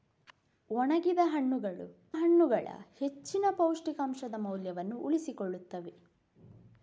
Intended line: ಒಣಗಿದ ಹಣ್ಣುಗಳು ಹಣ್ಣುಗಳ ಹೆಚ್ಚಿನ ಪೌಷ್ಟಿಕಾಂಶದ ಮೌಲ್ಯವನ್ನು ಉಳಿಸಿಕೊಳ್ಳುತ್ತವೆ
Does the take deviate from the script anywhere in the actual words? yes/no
no